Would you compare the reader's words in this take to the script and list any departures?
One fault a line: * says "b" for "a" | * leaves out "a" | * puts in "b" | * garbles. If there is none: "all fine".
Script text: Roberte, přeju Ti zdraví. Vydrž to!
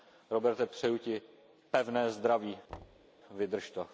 * puts in "pevné"